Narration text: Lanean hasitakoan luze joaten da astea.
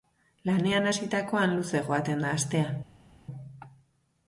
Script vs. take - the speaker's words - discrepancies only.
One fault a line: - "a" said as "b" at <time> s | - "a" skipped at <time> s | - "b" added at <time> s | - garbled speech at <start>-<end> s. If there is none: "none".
none